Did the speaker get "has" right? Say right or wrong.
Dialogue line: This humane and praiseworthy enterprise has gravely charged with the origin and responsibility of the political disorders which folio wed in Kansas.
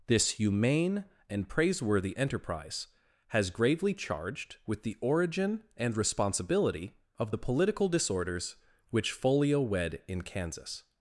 right